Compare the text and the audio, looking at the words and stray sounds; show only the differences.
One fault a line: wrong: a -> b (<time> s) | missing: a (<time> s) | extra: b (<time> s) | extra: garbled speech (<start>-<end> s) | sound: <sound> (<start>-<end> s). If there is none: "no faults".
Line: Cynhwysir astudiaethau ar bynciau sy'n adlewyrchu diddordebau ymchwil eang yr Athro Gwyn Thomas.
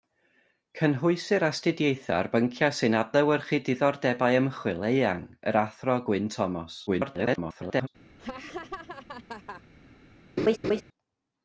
extra: garbled speech (6.9-7.9 s)
sound: laugh (8.2-9.6 s)
sound: laugh (10.4-10.8 s)